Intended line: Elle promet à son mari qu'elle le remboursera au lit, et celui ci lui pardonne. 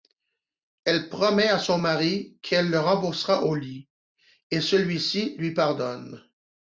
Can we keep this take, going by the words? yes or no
yes